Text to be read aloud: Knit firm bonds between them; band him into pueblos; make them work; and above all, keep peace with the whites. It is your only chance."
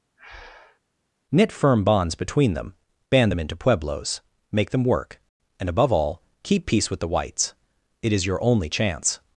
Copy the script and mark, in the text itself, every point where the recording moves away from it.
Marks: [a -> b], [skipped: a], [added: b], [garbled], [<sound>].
[breath] Knit firm bonds between them; band [him -> them] into pueblos; make them work; and above all, keep peace with the whites. It is your only chance."